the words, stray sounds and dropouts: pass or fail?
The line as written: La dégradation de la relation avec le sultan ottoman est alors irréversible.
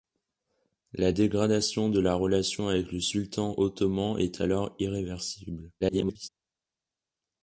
fail